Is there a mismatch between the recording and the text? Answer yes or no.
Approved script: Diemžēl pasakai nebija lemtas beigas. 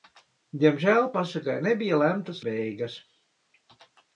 no